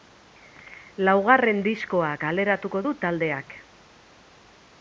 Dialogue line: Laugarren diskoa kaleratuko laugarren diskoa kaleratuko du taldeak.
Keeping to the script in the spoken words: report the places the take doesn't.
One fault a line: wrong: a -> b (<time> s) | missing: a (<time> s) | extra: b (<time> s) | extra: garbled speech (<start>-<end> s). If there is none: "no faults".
missing: laugarren diskoa kaleratuko (2.8 s)